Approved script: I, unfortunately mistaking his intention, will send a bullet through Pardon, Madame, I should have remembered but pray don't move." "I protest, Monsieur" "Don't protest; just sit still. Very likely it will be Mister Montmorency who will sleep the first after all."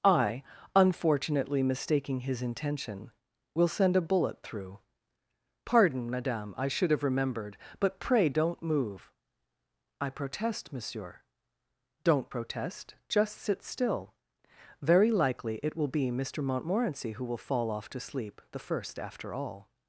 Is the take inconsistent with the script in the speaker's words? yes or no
yes